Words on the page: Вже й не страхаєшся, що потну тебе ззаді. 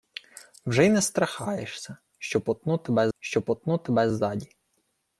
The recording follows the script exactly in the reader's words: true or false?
false